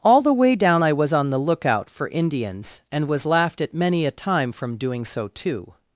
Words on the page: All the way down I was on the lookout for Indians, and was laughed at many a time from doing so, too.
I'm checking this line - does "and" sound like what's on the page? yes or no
yes